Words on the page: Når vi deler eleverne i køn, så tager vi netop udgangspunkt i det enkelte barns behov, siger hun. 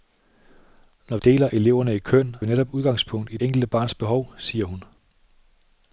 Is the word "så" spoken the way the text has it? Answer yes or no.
no